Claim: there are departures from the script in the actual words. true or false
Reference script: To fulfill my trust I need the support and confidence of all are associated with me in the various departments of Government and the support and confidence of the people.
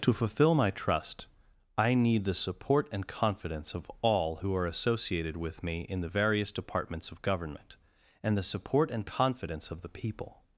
true